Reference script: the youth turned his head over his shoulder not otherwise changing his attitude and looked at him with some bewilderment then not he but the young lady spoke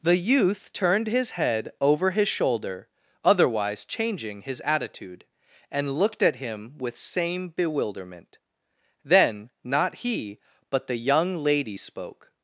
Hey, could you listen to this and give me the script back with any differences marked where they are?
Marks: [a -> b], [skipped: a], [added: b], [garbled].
the youth turned his head over his shoulder [skipped: not] otherwise changing his attitude and looked at him with [some -> same] bewilderment then not he but the young lady spoke